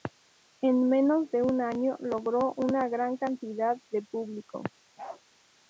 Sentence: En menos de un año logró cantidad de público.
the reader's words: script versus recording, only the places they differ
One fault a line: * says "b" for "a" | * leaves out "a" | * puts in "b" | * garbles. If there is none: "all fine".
* puts in "una gran"